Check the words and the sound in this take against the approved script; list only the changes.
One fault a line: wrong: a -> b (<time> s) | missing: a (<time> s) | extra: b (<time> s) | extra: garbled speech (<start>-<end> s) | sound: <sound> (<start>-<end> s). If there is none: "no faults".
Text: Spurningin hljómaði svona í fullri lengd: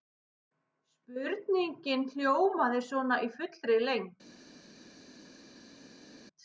no faults